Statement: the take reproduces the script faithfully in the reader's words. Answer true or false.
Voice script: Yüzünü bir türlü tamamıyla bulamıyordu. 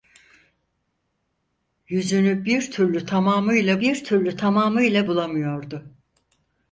false